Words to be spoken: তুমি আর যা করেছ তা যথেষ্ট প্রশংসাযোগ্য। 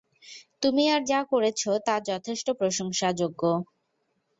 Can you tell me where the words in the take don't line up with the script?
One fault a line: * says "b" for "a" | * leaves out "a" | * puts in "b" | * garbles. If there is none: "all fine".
all fine